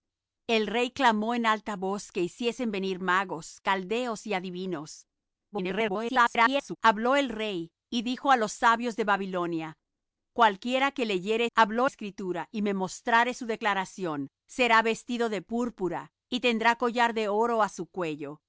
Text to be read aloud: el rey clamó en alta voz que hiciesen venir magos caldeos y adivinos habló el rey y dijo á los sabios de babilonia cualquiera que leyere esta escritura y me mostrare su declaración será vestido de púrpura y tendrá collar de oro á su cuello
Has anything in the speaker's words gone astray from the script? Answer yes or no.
yes